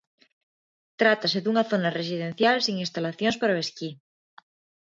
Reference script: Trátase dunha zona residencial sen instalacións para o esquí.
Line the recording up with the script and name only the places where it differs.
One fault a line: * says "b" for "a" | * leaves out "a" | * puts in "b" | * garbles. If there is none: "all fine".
all fine